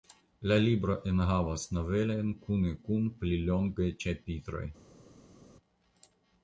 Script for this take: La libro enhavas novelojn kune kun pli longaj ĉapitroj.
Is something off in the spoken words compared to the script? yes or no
no